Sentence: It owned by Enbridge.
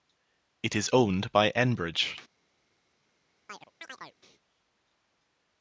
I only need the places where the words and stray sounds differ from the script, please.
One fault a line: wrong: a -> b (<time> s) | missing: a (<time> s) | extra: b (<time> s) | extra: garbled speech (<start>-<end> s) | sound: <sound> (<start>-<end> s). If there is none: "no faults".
extra: is (0.8 s)
sound: chirp (3.5-4.2 s)